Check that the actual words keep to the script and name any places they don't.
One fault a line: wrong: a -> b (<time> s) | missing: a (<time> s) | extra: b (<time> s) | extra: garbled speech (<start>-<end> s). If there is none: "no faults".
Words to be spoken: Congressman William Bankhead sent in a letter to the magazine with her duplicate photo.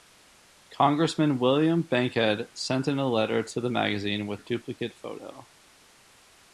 missing: her (4.4 s)